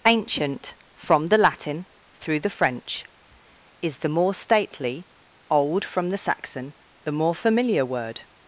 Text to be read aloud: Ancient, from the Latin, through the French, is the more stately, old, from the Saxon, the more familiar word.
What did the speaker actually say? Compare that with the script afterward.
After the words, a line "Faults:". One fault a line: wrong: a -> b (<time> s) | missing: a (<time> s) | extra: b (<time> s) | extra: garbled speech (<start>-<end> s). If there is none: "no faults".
Ancient, from the Latin, through the French, is the more stately, old, from the Saxon, the more familiar word.
Faults:
no faults